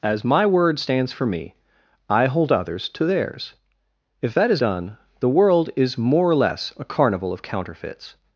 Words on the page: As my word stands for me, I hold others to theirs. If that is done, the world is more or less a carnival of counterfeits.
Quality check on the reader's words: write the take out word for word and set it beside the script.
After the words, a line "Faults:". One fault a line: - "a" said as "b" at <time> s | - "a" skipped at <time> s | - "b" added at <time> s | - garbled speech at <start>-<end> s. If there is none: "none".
As my word stands for me, I hold others to theirs. If that is done, the world is more or less a carnival of counterfeits.
Faults:
none